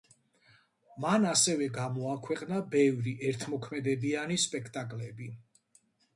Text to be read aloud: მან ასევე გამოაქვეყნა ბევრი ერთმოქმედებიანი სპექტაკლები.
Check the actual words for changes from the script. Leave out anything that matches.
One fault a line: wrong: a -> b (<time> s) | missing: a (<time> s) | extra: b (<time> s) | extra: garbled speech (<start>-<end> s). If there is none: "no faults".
no faults